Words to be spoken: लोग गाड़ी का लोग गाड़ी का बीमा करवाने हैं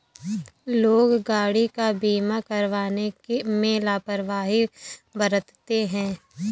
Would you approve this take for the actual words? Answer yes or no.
no